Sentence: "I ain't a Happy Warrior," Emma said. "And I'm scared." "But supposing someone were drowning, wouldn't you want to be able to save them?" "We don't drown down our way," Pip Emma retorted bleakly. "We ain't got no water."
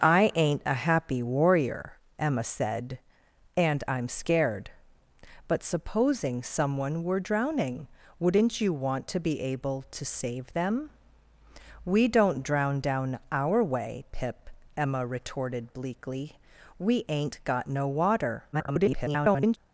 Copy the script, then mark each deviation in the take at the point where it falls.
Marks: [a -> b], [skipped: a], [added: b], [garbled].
"I ain't a Happy Warrior," Emma said. "And I'm scared." "But supposing someone were drowning, wouldn't you want to be able to save them?" "We don't drown down our way," Pip Emma retorted bleakly. "We ain't got no water." [garbled]